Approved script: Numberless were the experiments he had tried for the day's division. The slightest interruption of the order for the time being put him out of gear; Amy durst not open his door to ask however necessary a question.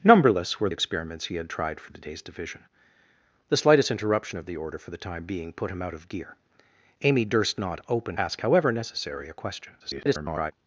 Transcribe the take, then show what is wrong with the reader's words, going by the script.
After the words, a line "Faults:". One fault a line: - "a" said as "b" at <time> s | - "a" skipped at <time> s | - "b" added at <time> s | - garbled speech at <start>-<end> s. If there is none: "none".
Numberless were experiments he had tried for the day's division. The slightest interruption of the order for the time being put him out of gear; Amy durst not open ask however necessary a question. [garbled]
Faults:
- "the" skipped at 0.7 s
- "his door to" skipped at 8.2 s
- garbled speech at 9.8-10.5 s